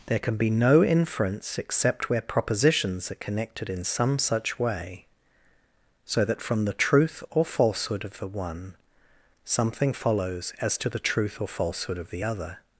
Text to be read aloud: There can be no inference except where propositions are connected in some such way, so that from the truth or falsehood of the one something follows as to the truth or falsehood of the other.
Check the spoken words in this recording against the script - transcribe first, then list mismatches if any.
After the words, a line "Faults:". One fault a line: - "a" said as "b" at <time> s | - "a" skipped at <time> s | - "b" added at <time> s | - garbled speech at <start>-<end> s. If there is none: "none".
There can be no inference except where propositions are connected in some such way, so that from the truth or falsehood of the one something follows as to the truth or falsehood of the other.
Faults:
none